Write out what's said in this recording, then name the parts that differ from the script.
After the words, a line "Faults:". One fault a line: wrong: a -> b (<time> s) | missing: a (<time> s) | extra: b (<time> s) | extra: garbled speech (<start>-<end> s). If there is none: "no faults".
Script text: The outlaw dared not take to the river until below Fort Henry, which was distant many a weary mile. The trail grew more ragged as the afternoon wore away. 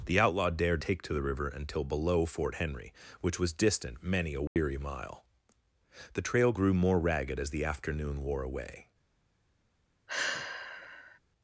The outlaw dared take to the river until below Fort Henry, which was distant many a weary mile. The trail grew more ragged as the afternoon wore away.
Faults:
missing: not (0.8 s)